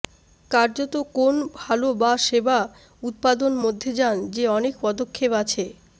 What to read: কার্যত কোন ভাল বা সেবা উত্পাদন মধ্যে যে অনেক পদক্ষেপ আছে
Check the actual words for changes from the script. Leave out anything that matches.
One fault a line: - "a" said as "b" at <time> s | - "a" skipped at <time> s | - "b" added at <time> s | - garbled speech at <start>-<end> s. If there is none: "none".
- "যান" added at 4.0 s